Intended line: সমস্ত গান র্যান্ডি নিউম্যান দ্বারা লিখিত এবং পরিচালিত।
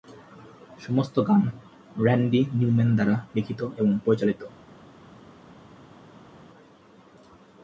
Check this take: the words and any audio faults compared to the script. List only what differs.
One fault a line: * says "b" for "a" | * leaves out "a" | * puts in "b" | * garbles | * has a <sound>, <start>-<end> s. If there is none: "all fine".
all fine